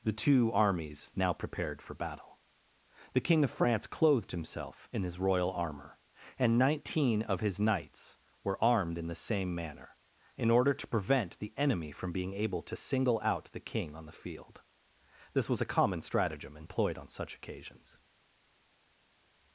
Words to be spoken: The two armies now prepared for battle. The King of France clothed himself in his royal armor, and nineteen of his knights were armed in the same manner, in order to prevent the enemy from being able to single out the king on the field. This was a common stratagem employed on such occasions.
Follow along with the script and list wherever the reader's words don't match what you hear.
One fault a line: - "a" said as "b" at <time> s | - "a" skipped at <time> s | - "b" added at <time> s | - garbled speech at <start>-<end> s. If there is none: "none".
none